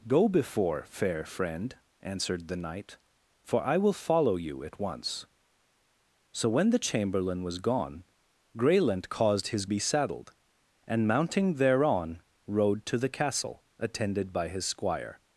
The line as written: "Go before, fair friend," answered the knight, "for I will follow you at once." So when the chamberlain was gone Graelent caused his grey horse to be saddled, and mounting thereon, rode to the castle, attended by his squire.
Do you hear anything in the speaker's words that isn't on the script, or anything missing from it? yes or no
yes